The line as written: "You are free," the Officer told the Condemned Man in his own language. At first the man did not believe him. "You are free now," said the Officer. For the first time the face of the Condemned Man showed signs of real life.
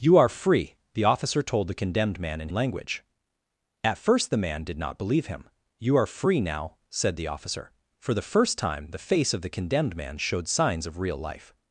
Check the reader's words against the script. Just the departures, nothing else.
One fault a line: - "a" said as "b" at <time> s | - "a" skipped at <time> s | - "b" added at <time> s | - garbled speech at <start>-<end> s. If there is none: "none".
- "his own" skipped at 2.5 s